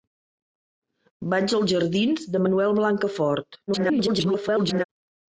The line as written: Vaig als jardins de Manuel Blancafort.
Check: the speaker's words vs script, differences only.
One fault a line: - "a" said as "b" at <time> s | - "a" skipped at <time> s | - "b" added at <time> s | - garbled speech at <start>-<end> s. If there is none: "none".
- garbled speech at 3.7-4.8 s